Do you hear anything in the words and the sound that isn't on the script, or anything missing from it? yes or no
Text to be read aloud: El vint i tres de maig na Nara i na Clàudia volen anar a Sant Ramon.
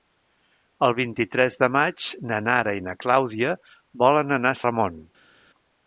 yes